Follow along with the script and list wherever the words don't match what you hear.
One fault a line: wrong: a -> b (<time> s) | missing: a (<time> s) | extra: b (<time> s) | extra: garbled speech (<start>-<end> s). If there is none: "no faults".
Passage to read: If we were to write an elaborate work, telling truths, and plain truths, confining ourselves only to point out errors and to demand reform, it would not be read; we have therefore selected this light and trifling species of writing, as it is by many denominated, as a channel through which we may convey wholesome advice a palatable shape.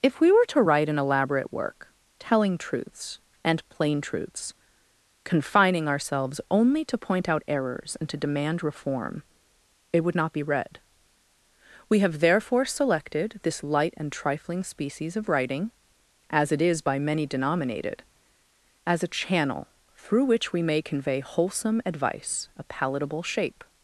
no faults